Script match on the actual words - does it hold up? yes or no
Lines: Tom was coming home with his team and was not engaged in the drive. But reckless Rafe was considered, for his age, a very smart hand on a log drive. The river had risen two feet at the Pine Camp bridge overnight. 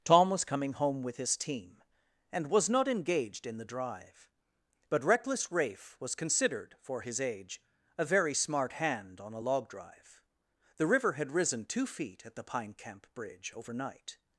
yes